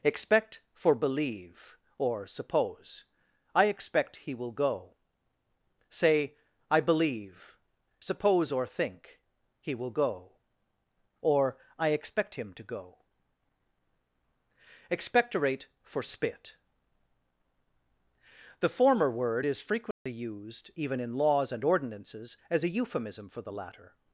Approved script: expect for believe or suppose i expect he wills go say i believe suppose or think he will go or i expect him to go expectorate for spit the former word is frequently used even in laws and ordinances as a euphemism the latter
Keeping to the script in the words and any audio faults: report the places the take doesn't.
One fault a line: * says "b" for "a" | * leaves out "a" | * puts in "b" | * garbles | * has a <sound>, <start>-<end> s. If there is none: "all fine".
* says "will" for "wills"
* has a dropout, 19.9-20.1 s
* puts in "for"